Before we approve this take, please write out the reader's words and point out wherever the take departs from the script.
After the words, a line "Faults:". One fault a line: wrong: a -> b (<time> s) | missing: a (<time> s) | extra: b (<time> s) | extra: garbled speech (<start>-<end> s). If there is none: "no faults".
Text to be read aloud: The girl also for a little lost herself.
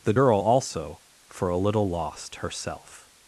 The girl also for a little lost herself.
Faults:
no faults